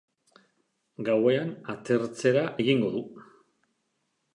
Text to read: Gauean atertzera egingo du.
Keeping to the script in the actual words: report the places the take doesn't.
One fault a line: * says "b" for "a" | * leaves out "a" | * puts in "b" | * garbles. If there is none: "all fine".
all fine